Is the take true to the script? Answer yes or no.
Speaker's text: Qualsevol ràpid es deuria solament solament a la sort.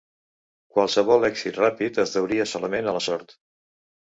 no